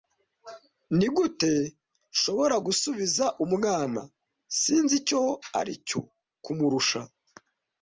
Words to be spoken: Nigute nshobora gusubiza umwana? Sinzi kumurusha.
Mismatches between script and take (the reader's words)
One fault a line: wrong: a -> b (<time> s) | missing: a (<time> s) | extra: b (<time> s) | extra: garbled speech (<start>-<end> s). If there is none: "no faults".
extra: icyo aricyo (5.0 s)